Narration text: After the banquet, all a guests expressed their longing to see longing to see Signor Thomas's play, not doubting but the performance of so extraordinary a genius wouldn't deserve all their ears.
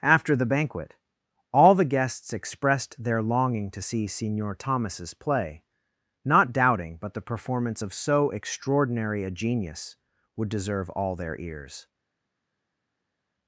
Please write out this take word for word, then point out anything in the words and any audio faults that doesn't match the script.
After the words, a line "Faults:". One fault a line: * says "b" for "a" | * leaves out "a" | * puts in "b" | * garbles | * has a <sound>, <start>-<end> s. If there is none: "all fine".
After the banquet, all the guests expressed their longing to see Signor Thomas's play, not doubting but the performance of so extraordinary a genius would deserve all their ears.
Faults:
* says "the" for "a"
* leaves out "longing to see"
* says "would" for "wouldn't"